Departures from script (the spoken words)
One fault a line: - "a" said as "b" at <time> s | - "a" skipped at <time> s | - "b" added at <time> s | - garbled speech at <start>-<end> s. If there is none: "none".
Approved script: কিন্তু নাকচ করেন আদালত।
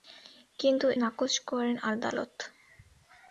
none